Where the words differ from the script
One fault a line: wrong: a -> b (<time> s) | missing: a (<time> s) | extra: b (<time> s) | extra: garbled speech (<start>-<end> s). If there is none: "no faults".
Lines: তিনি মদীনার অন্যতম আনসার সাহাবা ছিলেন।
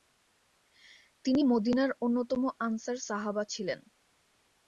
no faults